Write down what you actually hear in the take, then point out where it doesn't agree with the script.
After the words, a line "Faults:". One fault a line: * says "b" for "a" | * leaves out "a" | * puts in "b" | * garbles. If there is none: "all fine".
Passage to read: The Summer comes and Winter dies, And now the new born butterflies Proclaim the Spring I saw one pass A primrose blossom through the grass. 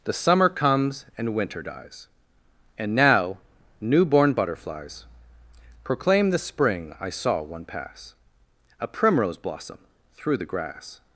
The Summer comes and Winter dies, And now new born butterflies Proclaim the Spring I saw one pass A primrose blossom through the grass.
Faults:
* leaves out "the"